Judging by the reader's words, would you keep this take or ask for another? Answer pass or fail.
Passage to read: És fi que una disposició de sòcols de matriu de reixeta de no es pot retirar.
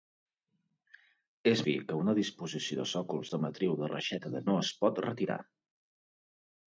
pass